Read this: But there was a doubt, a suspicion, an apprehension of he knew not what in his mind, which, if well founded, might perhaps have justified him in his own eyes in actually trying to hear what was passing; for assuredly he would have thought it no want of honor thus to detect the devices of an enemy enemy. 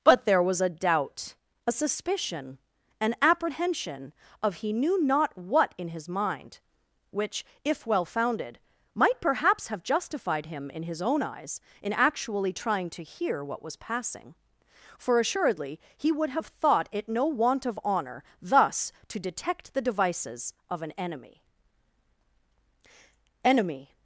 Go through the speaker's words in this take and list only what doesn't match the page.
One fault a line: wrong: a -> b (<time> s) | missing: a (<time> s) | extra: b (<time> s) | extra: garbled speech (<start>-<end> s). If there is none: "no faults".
no faults